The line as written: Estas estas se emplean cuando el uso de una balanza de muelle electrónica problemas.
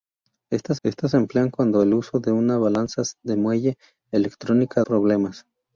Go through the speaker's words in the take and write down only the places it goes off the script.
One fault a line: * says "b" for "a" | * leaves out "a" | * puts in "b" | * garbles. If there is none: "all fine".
all fine